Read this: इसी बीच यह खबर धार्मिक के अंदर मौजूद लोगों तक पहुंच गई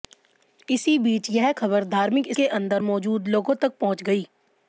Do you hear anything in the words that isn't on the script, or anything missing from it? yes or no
no